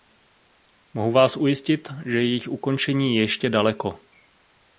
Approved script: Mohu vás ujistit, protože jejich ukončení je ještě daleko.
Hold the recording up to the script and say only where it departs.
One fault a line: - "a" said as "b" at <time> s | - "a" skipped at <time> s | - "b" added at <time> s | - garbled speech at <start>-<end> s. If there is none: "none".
- "protože" said as "že" at 2.0 s